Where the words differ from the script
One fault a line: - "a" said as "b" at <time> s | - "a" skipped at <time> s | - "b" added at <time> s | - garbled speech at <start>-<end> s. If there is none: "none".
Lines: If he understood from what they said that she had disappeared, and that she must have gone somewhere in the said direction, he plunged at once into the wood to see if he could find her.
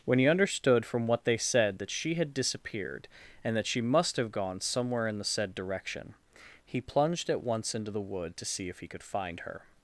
- "If" said as "When" at 0.1 s